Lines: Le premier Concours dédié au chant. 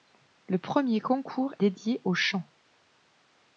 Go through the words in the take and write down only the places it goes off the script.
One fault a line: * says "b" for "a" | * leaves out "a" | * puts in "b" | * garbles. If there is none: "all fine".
all fine